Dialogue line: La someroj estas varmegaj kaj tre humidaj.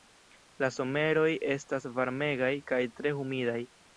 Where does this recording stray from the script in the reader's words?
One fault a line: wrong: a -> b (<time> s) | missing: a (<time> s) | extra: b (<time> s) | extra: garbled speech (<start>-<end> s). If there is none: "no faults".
no faults